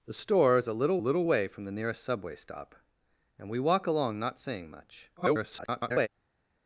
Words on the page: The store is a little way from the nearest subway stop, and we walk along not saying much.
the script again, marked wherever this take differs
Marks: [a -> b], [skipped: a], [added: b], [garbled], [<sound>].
The store is a little [added: little] way from the nearest subway stop, and we walk along not saying much. [garbled]